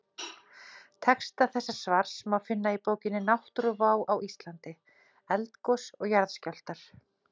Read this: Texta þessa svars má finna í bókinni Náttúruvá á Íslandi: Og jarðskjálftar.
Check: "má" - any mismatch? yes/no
no